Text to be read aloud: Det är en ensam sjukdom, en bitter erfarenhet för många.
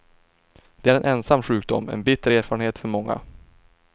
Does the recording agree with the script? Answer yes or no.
yes